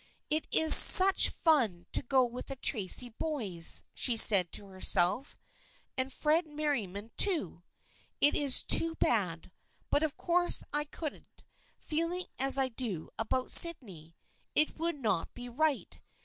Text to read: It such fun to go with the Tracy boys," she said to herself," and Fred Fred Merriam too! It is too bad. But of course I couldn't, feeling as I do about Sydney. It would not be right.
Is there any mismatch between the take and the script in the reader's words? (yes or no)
yes